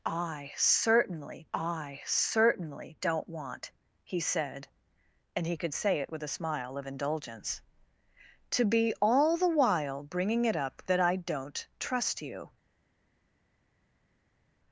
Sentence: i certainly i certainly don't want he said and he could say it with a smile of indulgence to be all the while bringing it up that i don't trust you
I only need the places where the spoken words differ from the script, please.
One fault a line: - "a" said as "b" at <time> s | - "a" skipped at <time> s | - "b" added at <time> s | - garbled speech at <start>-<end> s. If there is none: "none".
none